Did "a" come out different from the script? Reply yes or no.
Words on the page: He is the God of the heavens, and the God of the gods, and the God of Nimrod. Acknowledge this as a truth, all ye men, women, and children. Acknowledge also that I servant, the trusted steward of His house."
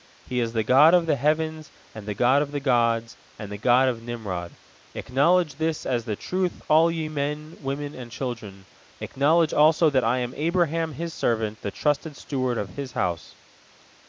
yes